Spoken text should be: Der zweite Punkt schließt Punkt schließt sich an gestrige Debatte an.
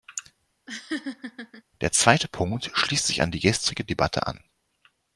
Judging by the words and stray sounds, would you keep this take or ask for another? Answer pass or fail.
fail